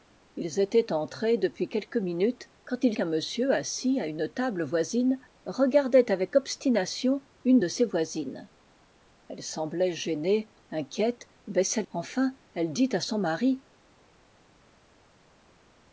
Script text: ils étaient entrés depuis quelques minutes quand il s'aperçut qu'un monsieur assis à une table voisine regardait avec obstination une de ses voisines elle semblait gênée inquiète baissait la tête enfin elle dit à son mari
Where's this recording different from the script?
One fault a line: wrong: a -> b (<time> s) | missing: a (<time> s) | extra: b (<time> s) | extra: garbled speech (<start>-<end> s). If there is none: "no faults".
missing: s'aperçut (3.0 s)
missing: la tête (11.8 s)